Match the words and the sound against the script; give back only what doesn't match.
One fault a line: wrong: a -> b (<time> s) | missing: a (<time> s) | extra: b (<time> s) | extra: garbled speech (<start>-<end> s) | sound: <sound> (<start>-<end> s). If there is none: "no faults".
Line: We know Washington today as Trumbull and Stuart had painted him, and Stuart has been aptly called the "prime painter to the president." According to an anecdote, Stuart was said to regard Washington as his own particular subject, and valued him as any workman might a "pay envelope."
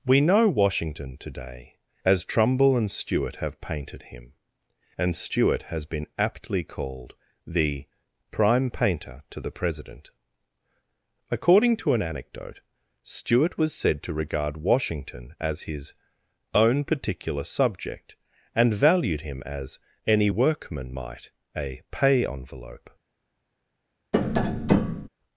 wrong: had -> have (3.4 s)
sound: tap (24.1-25.1 s)